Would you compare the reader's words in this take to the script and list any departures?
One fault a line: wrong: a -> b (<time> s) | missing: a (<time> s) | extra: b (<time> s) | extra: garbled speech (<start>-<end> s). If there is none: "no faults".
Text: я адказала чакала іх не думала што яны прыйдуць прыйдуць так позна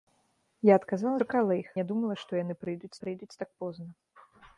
no faults